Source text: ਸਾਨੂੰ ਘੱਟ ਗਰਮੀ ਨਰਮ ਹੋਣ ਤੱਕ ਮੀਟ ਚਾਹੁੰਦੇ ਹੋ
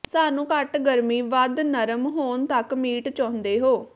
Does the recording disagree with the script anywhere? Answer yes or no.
yes